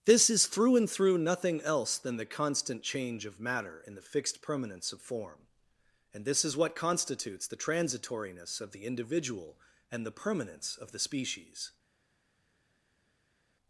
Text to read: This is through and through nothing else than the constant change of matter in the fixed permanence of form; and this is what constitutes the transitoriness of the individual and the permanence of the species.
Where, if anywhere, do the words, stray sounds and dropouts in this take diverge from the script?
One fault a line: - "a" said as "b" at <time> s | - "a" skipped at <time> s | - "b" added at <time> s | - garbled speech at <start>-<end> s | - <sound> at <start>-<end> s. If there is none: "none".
none